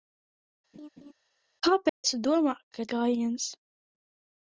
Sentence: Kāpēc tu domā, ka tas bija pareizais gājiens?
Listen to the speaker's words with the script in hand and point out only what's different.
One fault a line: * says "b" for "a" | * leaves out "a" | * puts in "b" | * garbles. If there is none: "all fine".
* leaves out "tas bija pareizais"